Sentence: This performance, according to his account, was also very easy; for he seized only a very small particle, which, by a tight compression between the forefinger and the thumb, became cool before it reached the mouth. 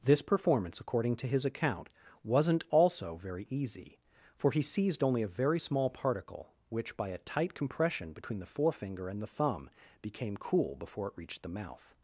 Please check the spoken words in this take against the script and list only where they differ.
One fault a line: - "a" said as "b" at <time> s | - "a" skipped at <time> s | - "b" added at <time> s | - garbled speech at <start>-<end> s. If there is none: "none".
- "was" said as "wasn't" at 2.2 s